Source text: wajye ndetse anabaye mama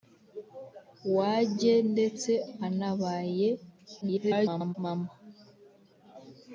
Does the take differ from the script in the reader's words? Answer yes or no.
yes